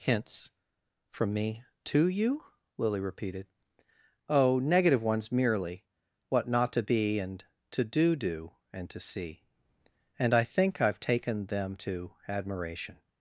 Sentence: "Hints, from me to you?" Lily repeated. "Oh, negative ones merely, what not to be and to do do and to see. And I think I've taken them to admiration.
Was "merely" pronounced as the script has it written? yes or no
yes